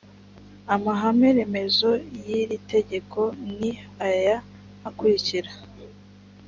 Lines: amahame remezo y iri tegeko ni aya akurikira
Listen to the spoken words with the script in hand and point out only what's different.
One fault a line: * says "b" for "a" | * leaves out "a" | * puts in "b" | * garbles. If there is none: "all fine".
all fine